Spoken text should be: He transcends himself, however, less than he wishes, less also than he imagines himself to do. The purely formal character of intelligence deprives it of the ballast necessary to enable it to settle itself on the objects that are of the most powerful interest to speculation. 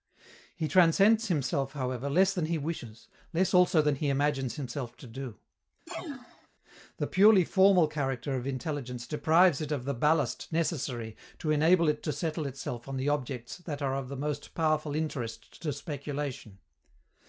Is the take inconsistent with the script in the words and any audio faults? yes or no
yes